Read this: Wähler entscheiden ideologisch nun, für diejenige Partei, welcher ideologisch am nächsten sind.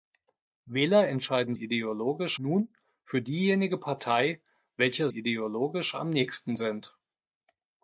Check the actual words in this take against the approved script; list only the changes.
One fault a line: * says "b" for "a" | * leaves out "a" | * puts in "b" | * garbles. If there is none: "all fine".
all fine